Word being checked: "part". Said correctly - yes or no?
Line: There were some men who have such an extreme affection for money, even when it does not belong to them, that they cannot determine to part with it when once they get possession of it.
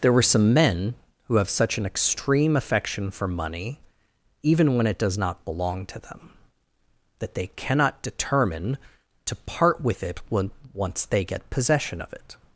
yes